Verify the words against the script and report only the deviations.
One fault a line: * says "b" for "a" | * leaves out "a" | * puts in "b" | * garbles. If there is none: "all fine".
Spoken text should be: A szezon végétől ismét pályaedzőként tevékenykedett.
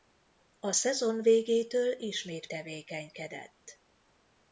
* leaves out "pályaedzőként"